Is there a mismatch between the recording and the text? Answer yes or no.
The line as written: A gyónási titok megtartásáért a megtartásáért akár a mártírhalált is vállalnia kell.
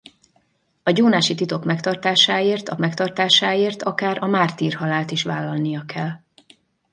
no